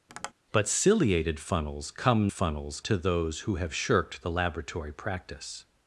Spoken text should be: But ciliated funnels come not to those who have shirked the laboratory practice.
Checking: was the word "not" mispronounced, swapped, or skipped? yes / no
yes